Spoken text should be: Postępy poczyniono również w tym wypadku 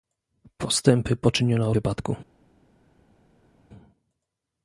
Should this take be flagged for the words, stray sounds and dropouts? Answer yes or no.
yes